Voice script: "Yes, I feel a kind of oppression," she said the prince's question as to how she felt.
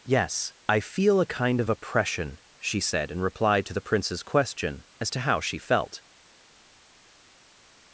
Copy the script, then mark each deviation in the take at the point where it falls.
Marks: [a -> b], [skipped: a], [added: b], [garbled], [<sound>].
"Yes, I feel a kind of oppression," she said [added: in reply to] the prince's question as to how she felt.